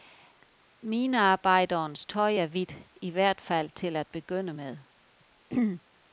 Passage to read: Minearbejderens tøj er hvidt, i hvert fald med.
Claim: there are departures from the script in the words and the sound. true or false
true